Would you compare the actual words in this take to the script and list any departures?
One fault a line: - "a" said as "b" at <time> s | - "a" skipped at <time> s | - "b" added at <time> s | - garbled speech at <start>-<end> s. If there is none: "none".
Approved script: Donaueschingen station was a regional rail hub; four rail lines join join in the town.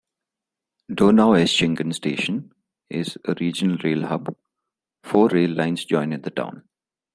- "was" said as "is" at 2.9 s
- "join" skipped at 6.1 s